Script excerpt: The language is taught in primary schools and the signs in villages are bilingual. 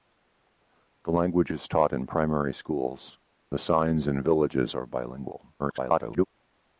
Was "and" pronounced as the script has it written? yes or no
no